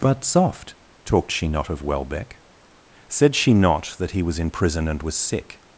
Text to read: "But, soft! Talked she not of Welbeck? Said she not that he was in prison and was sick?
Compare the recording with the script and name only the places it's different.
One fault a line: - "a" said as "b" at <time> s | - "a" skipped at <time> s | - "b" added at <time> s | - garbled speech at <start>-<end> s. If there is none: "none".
none